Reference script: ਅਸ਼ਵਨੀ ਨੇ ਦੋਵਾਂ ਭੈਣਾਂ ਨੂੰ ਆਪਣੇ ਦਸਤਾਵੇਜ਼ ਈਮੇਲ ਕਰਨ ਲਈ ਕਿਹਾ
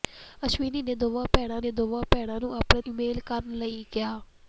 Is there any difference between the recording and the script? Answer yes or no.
yes